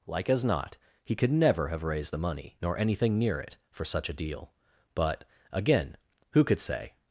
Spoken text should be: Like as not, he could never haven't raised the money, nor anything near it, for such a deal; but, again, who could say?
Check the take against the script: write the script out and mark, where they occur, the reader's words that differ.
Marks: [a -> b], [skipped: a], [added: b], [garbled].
Like as not, he could never [haven't -> have] raised the money, nor anything near it, for such a deal; but, again, who could say?